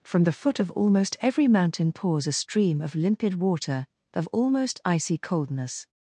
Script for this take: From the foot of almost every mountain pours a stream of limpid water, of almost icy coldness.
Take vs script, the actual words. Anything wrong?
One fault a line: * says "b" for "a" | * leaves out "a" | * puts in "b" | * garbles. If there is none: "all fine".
all fine